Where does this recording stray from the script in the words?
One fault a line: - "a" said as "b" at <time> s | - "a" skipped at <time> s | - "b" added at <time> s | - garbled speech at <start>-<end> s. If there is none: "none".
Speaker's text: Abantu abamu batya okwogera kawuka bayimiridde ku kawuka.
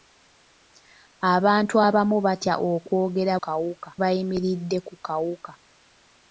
none